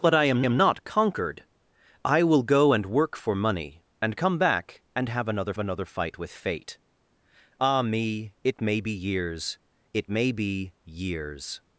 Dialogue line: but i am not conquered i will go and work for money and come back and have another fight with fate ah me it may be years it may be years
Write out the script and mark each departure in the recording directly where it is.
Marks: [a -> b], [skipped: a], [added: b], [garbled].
but i am [added: am] not conquered i will go and work for money and come back and have another [added: another] fight with fate ah me it may be years it may be years